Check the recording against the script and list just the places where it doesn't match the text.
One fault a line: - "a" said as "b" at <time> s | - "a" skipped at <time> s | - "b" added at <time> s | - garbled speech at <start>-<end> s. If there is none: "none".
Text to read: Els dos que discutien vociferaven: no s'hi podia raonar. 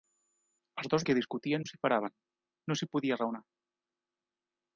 none